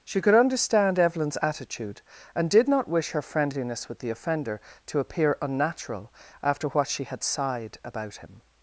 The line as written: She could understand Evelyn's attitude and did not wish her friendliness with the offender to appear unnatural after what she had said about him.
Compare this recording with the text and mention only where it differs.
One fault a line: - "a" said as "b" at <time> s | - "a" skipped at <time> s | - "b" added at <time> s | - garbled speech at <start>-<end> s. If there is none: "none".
- "said" said as "sighed" at 7.2 s